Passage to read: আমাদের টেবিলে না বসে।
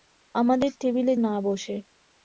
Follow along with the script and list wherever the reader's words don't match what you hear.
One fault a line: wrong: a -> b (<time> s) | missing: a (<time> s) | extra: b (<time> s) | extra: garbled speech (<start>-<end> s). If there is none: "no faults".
no faults